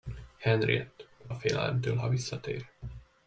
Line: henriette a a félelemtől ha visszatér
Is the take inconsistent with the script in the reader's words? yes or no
no